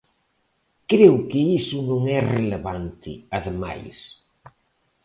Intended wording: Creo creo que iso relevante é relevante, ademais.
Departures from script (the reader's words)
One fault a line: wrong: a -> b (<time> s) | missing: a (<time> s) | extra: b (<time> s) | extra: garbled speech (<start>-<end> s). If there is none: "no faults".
missing: creo (1.1 s)
wrong: relevante -> non (1.9 s)